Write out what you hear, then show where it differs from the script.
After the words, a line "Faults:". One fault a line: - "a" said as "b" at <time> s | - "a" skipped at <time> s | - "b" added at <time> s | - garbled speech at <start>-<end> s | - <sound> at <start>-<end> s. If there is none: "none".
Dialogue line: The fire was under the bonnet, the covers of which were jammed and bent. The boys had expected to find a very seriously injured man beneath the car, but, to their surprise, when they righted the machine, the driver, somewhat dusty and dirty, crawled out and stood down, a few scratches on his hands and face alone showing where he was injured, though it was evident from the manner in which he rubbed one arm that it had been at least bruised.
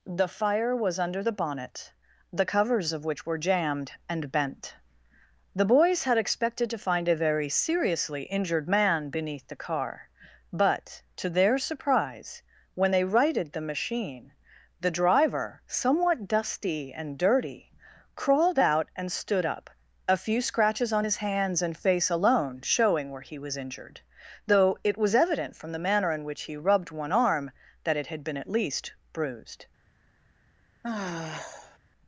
The fire was under the bonnet, the covers of which were jammed and bent. The boys had expected to find a very seriously injured man beneath the car, but, to their surprise, when they righted the machine, the driver, somewhat dusty and dirty, crawled out and stood up, a few scratches on his hands and face alone showing where he was injured, though it was evident from the manner in which he rubbed one arm that it had been at least bruised.
Faults:
- "down" said as "up" at 19.5 s
- sigh at 30.8-31.8 s